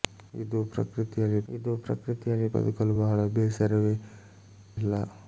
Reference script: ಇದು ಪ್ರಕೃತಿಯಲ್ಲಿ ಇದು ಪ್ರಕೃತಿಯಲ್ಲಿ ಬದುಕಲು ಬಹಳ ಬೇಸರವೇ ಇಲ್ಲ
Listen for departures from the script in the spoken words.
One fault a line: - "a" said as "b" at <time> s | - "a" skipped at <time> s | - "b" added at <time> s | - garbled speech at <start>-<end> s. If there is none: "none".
none